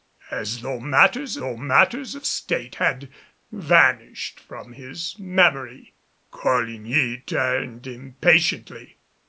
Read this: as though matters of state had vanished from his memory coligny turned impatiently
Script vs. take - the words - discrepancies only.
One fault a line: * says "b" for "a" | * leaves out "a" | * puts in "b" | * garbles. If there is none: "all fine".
* puts in "though matters"